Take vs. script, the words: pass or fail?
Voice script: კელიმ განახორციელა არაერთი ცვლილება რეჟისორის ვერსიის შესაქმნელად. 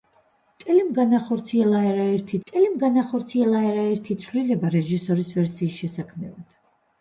fail